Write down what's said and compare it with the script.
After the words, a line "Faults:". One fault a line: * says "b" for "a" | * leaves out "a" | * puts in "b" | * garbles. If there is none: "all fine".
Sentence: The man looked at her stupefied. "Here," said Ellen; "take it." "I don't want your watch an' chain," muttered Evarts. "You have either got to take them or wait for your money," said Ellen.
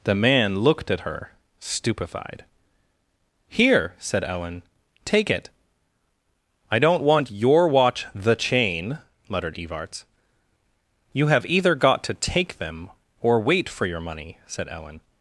The man looked at her stupefied. "Here," said Ellen; "take it." "I don't want your watch the' chain," muttered Evarts. "You have either got to take them or wait for your money," said Ellen.
Faults:
* says "the" for "an"